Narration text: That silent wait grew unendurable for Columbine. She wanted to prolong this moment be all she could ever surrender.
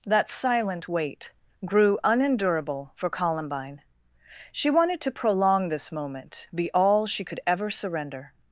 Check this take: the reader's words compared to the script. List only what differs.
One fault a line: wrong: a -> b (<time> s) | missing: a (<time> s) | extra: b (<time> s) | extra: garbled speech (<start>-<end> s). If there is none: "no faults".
no faults